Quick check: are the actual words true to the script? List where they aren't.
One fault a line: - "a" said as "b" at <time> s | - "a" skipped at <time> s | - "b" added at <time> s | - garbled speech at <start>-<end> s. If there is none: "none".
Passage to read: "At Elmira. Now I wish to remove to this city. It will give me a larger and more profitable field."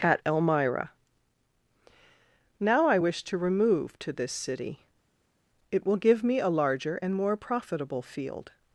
none